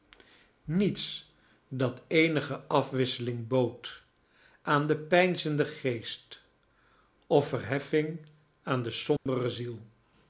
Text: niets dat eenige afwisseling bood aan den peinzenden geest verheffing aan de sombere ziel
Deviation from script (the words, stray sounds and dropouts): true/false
true